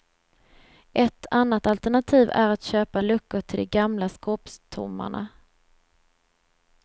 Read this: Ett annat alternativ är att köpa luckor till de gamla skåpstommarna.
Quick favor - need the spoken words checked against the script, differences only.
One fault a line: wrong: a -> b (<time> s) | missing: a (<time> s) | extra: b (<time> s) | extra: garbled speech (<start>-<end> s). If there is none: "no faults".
no faults